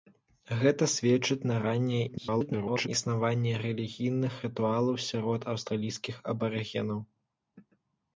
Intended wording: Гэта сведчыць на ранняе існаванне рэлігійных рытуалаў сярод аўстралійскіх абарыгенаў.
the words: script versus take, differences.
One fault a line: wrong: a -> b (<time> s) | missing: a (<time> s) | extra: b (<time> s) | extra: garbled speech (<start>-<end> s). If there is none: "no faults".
extra: garbled speech (2.1-2.9 s)